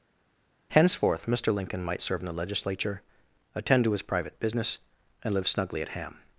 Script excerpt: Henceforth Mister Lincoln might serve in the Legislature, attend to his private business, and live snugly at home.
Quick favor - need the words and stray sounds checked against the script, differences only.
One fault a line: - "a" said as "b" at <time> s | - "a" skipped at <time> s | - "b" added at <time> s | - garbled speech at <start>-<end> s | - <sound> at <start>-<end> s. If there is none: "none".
- "home" said as "ham" at 5.9 s